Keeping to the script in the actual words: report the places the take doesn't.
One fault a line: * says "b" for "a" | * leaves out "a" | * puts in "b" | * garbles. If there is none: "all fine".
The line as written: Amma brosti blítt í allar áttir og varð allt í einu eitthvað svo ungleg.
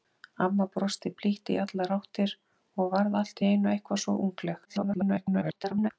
* garbles